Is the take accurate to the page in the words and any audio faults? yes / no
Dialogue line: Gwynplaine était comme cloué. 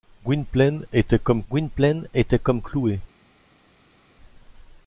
no